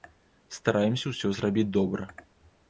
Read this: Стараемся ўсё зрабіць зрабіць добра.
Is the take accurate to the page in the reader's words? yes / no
no